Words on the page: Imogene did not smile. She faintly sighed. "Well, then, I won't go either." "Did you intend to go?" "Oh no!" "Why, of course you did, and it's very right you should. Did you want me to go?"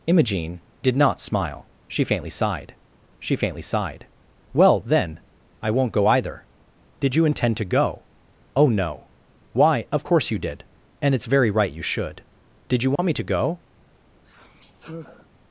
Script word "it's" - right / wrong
right